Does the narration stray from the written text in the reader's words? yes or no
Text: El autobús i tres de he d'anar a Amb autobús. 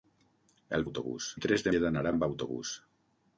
no